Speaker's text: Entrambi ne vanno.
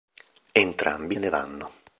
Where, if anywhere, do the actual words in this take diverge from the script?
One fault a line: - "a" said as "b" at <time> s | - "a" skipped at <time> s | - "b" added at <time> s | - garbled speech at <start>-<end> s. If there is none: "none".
none